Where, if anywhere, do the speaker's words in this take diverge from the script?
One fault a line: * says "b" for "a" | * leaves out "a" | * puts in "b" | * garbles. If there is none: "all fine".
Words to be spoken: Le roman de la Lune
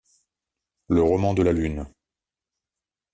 all fine